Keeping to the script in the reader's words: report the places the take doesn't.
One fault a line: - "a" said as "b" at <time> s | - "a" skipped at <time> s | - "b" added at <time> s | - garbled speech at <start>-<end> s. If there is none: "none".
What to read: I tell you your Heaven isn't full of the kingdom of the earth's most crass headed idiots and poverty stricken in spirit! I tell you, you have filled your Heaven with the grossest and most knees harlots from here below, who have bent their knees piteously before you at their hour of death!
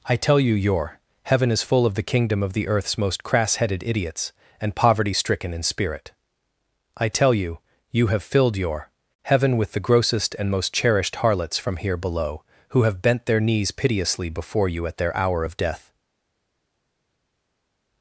- "isn't" said as "is" at 1.5 s
- "knees" said as "cherished" at 10.7 s